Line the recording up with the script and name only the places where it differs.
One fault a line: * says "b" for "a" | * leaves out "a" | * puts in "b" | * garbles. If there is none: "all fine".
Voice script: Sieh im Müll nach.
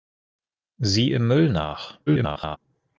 * garbles